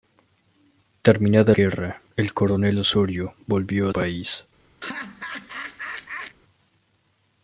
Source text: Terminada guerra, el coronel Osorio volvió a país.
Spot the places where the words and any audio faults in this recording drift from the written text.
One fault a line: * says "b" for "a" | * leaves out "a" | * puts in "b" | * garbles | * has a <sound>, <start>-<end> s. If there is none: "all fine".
* has a laugh, 4.8-6.4 s